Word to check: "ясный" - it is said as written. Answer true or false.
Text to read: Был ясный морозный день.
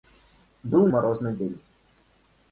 false